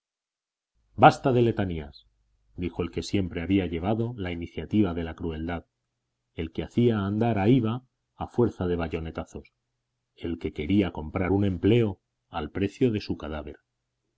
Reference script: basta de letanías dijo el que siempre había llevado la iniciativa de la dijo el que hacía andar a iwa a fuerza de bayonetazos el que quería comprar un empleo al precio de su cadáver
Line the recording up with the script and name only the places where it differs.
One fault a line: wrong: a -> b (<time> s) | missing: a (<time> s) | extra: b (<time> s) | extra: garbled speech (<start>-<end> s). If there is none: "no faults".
wrong: dijo -> crueldad (5.1 s)